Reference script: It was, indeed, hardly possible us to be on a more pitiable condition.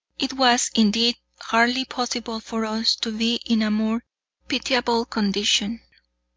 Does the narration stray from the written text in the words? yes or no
yes